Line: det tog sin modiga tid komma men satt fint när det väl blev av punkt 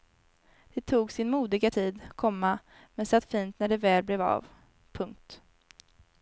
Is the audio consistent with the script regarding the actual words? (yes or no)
yes